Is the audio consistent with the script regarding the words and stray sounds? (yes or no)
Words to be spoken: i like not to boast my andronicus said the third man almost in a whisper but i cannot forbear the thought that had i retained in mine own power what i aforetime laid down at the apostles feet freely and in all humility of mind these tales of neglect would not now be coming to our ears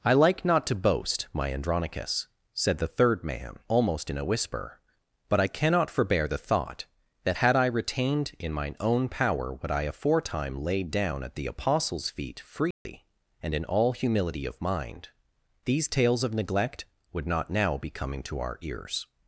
no